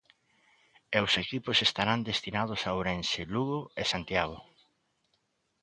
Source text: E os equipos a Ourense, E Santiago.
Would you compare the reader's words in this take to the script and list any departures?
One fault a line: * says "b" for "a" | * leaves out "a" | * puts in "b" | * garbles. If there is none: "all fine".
* puts in "estarán destinados"
* puts in "Lugo"